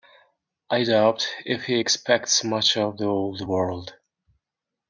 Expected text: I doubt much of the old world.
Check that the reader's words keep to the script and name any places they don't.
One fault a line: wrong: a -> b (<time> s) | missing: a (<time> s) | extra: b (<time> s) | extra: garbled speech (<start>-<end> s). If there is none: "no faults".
extra: if he expects (1.4 s)